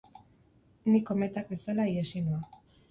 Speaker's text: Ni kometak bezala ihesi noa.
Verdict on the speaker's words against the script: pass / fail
pass